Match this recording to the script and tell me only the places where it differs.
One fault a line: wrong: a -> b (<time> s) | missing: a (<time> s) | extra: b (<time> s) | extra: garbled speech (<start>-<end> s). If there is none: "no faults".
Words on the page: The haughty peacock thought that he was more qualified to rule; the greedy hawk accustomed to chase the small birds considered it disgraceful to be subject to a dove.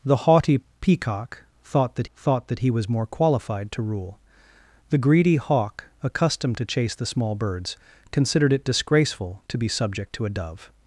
extra: thought that (2.1 s)